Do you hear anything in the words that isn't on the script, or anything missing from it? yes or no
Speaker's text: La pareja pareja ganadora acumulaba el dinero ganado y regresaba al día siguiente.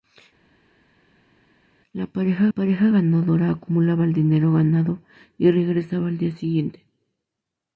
no